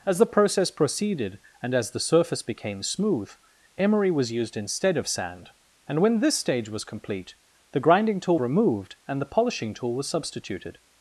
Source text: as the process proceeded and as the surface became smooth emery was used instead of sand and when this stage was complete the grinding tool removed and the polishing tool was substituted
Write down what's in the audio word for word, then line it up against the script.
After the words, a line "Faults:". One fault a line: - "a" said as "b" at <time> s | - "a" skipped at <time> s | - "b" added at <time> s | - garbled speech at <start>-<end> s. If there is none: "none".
as the process proceeded and as the surface became smooth emery was used instead of sand and when this stage was complete the grinding tool removed and the polishing tool was substituted
Faults:
none